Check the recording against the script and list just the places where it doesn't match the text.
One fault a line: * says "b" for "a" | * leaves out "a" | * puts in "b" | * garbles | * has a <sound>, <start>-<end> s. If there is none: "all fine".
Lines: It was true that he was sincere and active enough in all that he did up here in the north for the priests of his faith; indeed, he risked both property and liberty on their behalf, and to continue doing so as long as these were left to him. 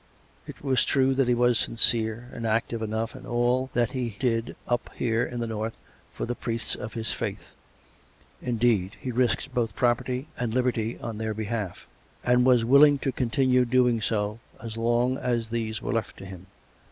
* puts in "was willing"